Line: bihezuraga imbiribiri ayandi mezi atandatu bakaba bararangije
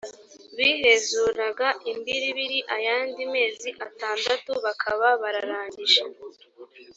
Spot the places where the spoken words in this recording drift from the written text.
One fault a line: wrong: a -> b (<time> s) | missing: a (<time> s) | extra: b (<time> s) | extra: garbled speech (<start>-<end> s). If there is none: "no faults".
no faults